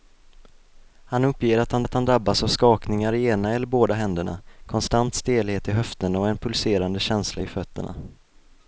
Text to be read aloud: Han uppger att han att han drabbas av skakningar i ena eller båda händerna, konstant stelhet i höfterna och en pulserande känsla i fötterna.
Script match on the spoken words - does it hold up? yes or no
yes